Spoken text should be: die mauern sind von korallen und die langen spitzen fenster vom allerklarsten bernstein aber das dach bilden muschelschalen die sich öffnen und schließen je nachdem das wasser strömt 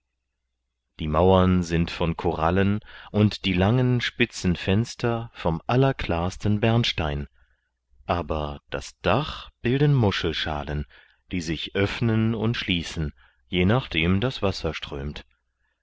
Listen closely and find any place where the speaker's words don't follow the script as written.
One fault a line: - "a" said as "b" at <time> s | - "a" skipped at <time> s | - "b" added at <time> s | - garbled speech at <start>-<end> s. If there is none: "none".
none